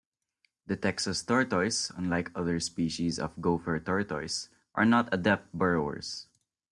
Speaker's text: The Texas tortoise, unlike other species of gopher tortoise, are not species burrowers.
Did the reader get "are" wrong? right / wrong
right